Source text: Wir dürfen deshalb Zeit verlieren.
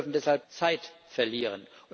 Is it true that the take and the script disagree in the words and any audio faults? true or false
false